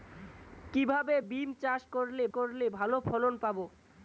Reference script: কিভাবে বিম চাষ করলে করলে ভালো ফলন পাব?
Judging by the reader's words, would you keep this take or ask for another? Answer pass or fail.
pass